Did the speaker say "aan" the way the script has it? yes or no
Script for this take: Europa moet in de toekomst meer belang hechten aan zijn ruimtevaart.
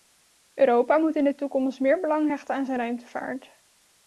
yes